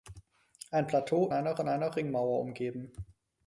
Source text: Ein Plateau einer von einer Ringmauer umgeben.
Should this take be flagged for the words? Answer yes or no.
no